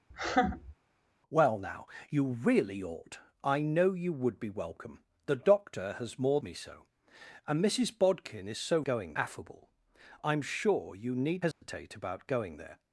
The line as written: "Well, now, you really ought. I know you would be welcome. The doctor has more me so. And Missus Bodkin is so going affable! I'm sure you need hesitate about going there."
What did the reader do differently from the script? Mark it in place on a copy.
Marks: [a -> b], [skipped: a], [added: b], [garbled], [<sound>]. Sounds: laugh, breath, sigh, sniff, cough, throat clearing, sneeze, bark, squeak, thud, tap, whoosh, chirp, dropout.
[laugh] "Well, now, you really ought. I know you would be welcome. The doctor has more me so. And Missus Bodkin is so going affable! I'm sure you need hesitate [dropout] about going there."